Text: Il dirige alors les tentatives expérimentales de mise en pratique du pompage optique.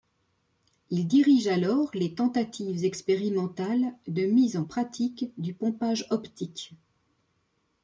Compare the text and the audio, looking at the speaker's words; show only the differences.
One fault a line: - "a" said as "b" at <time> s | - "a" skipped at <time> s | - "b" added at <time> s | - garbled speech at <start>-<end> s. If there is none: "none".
none